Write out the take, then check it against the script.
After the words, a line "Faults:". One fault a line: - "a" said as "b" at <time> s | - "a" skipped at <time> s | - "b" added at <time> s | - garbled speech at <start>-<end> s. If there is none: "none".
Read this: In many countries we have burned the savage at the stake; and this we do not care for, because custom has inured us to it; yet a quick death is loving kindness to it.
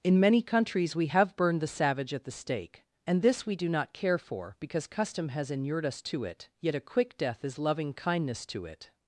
In many countries we have burned the savage at the stake; and this we do not care for, because custom has inured us to it; yet a quick death is loving kindness to it.
Faults:
none